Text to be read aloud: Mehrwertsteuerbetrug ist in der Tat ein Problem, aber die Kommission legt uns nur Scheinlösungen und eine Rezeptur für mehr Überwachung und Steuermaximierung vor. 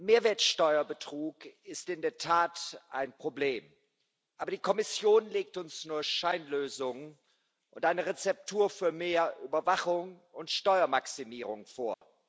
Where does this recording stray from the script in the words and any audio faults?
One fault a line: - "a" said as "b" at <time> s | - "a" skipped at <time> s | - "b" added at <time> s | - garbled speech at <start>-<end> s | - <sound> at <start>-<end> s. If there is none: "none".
- dropout at 11.9-12.0 s